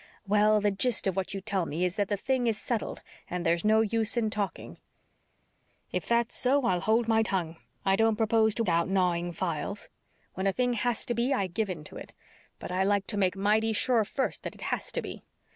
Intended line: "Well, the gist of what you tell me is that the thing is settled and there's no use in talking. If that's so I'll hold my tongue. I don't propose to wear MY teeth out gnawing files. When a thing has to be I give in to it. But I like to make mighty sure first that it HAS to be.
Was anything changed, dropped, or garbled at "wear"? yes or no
yes